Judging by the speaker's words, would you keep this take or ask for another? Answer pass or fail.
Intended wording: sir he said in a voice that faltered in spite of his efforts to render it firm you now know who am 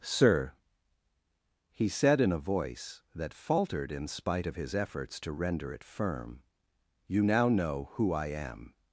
fail